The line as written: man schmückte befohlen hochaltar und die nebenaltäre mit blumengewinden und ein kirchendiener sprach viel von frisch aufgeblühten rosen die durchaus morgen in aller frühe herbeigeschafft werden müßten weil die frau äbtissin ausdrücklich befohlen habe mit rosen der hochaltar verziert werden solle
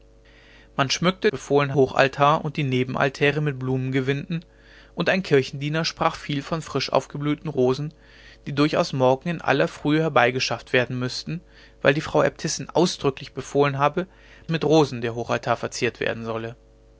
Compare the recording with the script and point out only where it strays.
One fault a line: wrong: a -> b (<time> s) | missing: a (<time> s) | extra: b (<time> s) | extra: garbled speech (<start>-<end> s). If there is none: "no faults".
no faults